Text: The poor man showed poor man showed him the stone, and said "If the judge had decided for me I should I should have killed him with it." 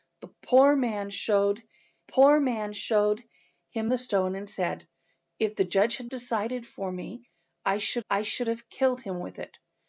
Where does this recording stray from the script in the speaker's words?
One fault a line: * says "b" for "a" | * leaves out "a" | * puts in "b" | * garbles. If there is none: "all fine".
all fine